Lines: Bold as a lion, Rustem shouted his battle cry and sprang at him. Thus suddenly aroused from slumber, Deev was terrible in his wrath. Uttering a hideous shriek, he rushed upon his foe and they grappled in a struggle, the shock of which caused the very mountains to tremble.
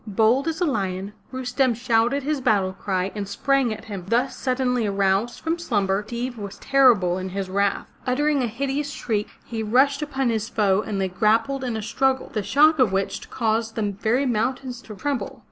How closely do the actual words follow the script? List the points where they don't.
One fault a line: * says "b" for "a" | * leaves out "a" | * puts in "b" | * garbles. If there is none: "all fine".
all fine